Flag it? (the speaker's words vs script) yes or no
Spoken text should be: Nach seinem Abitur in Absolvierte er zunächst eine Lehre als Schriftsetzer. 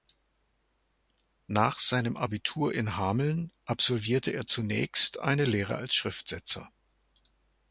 yes